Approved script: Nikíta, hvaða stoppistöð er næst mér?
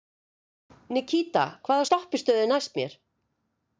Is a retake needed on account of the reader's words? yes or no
no